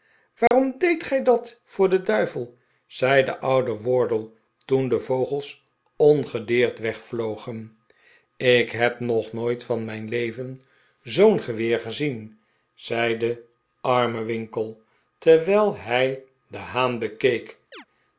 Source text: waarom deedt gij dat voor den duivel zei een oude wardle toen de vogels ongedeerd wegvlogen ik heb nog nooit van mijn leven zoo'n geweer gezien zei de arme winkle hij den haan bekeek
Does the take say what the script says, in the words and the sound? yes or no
no